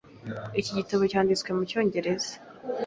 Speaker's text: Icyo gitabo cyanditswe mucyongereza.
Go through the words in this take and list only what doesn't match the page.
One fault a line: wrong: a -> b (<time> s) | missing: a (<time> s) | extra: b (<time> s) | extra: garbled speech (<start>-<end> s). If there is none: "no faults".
wrong: Icyo -> Iki (0.6 s)